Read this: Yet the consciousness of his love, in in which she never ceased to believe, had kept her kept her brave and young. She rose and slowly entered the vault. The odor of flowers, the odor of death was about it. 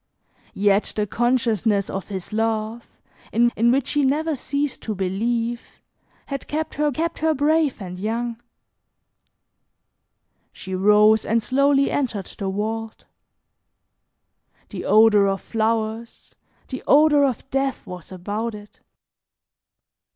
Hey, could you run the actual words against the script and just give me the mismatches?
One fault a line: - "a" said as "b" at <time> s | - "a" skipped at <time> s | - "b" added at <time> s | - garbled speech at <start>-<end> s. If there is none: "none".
none